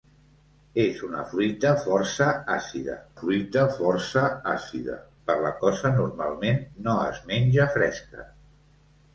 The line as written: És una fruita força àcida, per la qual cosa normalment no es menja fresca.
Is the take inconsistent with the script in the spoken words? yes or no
yes